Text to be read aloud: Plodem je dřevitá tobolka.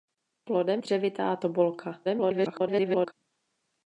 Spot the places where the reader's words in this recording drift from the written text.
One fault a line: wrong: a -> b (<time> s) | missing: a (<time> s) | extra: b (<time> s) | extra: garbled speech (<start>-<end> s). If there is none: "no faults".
missing: je (0.8 s)
extra: garbled speech (2.0-3.1 s)